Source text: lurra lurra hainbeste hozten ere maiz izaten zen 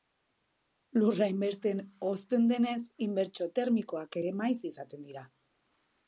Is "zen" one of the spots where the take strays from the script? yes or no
yes